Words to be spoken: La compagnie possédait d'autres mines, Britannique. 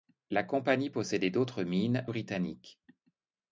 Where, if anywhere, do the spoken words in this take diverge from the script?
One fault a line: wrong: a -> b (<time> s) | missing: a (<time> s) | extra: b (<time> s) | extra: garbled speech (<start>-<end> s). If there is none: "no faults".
no faults